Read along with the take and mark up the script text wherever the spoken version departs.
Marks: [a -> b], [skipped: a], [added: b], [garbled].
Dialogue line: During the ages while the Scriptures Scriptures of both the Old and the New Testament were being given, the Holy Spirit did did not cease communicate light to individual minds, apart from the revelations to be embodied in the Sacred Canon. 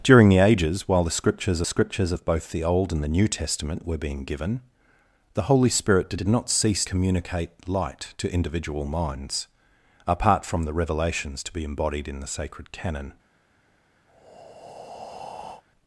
During the ages while the Scriptures Scriptures of both the Old and the New Testament were being given, the Holy Spirit did did not cease communicate light to individual minds, apart from the revelations to be embodied in the Sacred Canon.